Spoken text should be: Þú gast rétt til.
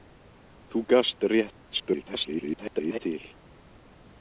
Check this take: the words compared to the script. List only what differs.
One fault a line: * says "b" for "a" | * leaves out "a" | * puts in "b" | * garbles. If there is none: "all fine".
* garbles